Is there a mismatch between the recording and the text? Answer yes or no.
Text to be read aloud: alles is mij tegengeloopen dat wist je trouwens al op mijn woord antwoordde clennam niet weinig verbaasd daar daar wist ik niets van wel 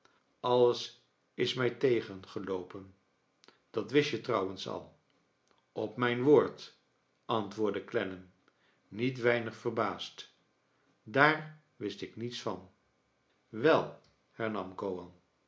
yes